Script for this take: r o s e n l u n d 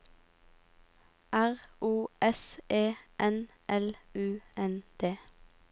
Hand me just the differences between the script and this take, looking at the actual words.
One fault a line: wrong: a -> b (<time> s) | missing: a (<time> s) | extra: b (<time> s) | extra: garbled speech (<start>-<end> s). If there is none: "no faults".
no faults